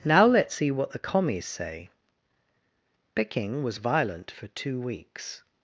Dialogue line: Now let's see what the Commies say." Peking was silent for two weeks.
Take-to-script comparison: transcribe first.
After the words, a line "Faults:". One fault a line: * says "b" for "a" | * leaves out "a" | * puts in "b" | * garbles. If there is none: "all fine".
Now let's see what the Commies say." Peking was violent for two weeks.
Faults:
* says "violent" for "silent"